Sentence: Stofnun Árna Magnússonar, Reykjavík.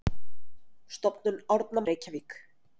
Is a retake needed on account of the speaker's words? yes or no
yes